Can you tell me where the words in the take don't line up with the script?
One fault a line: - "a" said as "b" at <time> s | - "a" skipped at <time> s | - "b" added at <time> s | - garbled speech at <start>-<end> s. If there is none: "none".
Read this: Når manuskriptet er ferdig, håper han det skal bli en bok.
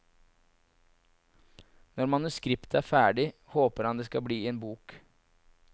none